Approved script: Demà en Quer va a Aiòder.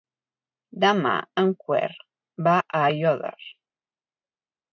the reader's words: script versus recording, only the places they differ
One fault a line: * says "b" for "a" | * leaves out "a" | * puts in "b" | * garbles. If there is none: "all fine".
all fine